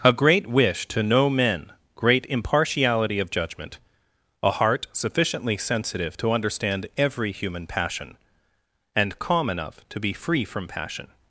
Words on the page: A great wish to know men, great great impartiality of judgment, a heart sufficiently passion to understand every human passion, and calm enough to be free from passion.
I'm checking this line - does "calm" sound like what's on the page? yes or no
yes